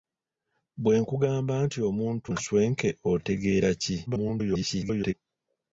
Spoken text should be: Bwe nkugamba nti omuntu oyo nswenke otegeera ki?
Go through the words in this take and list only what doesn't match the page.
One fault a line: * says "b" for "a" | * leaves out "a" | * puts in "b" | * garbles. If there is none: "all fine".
* leaves out "oyo"
* garbles